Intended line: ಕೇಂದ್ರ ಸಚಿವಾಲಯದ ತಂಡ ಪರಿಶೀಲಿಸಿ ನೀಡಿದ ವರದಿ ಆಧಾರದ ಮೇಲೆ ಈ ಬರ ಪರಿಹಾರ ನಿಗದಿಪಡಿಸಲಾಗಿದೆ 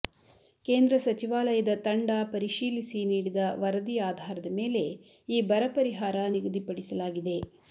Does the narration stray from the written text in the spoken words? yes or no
no